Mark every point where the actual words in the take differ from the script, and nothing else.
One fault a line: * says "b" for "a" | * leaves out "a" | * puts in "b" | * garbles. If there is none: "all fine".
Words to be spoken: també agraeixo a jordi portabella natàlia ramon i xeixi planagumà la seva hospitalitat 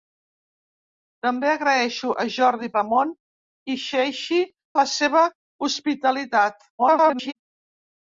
* leaves out "portabella natàlia"
* leaves out "planagumà"
* garbles